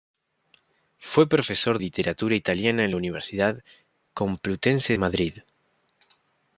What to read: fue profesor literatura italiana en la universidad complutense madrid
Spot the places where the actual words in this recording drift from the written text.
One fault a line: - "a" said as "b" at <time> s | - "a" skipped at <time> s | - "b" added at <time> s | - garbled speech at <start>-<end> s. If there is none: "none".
none